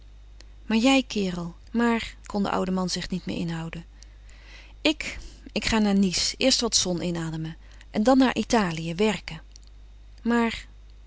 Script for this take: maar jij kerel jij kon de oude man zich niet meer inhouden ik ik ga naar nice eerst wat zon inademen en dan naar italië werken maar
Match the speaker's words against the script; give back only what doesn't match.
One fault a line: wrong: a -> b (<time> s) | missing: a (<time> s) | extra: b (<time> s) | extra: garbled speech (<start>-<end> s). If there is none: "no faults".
wrong: jij -> maar (1.7 s)